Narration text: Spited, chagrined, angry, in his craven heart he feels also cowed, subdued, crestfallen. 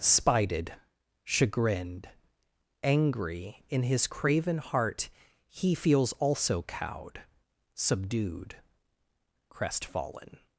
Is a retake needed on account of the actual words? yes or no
no